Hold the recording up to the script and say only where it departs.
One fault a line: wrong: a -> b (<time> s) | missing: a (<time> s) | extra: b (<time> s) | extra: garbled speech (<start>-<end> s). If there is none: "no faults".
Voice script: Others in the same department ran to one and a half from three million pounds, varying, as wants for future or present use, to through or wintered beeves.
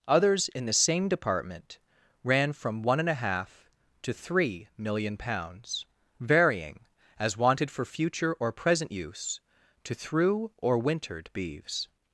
wrong: to -> from (2.5 s)
wrong: from -> to (4.0 s)
wrong: wants -> wanted (7.4 s)